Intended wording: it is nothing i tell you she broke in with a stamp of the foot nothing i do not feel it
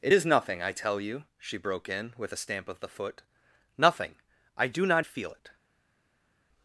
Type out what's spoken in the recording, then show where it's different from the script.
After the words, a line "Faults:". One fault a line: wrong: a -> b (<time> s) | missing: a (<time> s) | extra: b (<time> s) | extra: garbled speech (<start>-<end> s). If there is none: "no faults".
it is nothing i tell you she broke in with a stamp of the foot nothing i do not feel it
Faults:
no faults